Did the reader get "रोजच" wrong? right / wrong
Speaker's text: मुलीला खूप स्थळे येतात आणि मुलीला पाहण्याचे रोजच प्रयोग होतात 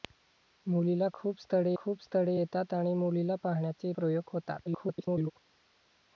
wrong